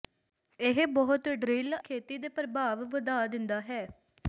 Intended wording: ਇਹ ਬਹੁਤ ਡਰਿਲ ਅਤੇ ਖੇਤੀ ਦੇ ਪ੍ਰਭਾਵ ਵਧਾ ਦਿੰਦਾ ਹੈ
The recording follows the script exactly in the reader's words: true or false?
false